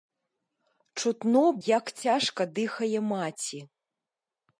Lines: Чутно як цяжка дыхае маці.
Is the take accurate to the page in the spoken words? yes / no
yes